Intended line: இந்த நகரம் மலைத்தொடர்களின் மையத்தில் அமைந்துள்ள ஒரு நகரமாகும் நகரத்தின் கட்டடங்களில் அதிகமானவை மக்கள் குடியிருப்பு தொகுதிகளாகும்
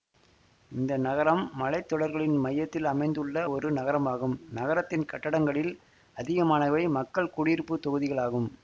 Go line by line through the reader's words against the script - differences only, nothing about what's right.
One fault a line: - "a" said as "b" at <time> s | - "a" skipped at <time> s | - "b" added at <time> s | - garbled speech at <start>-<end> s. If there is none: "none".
none